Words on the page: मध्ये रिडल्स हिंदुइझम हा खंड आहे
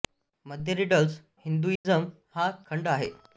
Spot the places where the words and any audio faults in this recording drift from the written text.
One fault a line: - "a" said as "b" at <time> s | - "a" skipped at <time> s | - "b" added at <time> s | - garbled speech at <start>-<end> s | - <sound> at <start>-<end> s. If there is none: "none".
- dropout at 1.8-1.9 s